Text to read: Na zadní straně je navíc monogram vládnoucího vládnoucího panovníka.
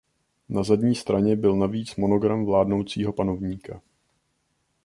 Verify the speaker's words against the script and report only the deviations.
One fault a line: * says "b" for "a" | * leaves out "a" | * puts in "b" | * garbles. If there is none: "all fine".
* says "byl" for "je"
* leaves out "vládnoucího"